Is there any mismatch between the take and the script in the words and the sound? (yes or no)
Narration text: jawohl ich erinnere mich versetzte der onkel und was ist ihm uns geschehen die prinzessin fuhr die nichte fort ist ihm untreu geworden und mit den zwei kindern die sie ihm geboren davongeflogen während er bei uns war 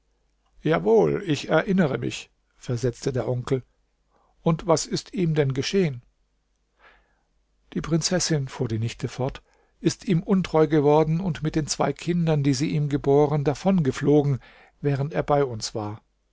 yes